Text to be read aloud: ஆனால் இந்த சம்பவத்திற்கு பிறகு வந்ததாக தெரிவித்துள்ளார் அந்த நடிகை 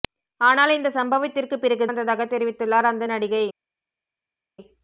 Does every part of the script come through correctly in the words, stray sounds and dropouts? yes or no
yes